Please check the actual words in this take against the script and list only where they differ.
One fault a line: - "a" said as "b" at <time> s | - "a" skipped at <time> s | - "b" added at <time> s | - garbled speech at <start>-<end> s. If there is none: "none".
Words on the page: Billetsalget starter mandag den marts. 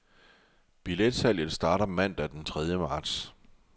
- "tredje" added at 2.5 s